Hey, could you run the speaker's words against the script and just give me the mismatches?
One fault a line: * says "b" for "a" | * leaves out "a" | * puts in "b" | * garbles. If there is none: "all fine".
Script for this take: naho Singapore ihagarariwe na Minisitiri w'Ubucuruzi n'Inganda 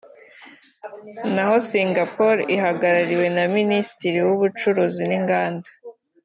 all fine